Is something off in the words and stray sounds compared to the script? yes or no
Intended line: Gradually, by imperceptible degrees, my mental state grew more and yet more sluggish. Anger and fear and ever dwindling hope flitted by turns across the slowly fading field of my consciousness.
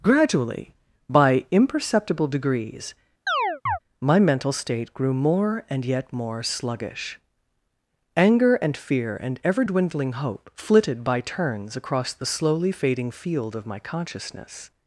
yes